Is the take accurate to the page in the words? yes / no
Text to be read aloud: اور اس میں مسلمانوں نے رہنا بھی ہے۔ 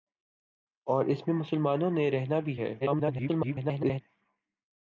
no